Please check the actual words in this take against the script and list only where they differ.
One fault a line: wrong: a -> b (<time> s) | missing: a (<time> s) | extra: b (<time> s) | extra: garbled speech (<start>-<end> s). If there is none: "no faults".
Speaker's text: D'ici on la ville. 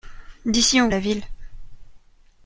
no faults